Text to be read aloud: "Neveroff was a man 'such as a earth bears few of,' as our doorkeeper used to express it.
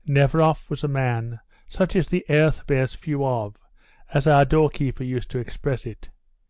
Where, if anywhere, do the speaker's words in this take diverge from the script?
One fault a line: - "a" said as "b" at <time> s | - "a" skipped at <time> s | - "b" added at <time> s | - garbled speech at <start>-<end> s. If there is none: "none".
- "a" said as "the" at 2.1 s